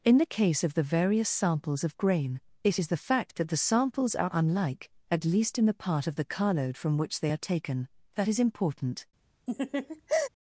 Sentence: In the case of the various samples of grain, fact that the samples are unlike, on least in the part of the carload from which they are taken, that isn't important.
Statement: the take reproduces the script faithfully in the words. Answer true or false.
false